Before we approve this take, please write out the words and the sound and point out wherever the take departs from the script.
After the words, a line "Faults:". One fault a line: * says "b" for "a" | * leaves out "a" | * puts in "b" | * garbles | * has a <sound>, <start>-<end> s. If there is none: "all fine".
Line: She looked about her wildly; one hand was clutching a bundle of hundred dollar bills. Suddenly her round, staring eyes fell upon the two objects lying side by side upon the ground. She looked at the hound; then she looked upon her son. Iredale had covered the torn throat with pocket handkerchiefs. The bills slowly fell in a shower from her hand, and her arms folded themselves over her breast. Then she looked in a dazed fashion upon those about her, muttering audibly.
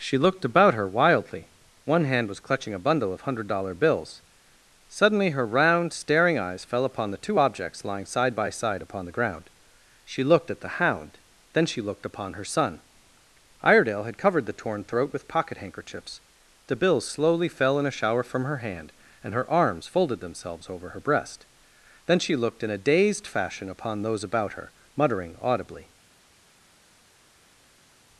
She looked about her wildly; one hand was clutching a bundle of hundred dollar bills. Suddenly her round, staring eyes fell upon the two objects lying side by side upon the ground. She looked at the hound; then she looked upon her son. Iredale had covered the torn throat with pocket handkerchiefs. The bills slowly fell in a shower from her hand, and her arms folded themselves over her breast. Then she looked in a dazed fashion upon those about her, muttering audibly.
Faults:
all fine